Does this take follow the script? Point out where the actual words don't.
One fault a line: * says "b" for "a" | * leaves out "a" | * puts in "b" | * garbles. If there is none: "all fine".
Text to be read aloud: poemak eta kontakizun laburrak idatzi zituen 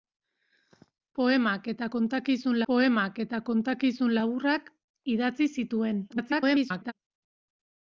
* puts in "poemak eta kontakizun"
* garbles